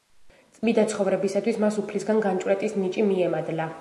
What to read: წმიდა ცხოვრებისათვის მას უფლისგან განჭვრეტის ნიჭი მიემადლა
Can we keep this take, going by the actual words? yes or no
yes